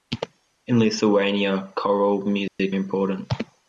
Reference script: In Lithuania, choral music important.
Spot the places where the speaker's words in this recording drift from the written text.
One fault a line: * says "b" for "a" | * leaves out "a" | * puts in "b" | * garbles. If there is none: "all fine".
all fine